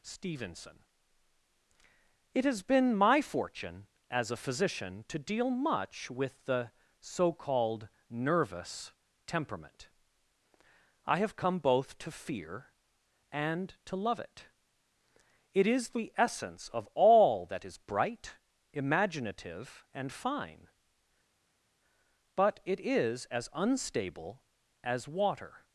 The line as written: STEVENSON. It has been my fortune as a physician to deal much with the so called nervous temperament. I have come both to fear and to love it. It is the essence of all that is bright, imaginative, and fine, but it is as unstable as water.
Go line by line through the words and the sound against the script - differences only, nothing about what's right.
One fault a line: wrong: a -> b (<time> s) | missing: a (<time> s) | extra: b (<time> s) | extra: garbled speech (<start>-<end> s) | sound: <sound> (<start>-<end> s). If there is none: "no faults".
no faults